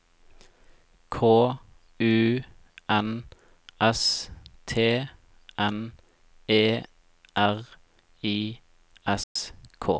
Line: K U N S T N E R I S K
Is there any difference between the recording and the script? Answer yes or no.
no